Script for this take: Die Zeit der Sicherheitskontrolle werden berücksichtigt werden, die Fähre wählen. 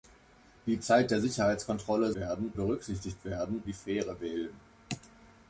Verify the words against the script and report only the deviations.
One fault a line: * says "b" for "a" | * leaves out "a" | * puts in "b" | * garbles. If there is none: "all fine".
all fine